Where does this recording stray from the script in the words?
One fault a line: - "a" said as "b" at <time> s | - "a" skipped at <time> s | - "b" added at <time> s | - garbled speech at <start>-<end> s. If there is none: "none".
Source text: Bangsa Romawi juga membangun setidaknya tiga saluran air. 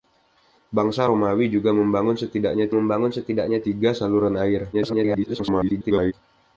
- "membangun setidaknya" added at 2.7 s
- garbled speech at 4.7-6.1 s